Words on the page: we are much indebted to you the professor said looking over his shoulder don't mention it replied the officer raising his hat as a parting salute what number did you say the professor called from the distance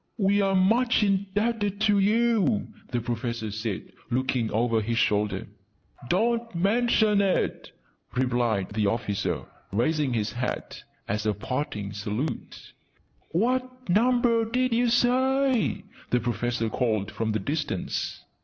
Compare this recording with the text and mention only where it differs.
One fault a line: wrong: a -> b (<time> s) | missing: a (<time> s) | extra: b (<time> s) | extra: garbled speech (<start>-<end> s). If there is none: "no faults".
no faults